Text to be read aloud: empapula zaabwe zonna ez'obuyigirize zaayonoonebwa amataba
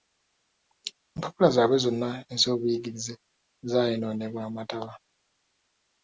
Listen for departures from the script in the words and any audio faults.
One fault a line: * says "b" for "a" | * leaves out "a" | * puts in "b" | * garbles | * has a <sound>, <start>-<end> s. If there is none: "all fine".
all fine